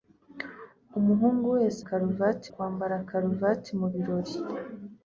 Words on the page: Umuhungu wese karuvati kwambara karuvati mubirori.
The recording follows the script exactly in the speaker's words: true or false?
true